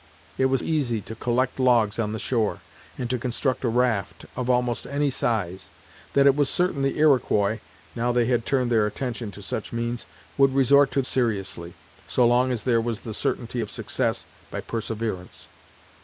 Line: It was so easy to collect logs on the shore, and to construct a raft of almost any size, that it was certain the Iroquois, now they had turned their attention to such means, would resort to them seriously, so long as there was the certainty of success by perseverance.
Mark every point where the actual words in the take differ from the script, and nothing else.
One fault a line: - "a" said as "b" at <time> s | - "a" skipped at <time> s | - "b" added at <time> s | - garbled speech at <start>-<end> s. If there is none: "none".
- "so" skipped at 0.6 s
- "them" skipped at 11.0 s